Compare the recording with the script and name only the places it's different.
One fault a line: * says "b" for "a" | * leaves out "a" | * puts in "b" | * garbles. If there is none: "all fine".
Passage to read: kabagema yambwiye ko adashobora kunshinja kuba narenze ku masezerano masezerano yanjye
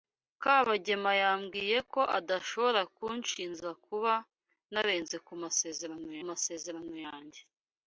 all fine